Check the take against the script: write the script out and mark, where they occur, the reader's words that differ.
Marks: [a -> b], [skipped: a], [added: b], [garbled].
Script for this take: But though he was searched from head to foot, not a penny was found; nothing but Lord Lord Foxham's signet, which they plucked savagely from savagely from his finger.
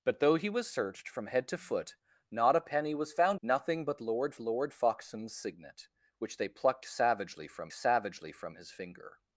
But though he was searched from head to foot, not a penny was found; nothing but Lord Lord Foxham's signet, which they plucked savagely from savagely from his finger.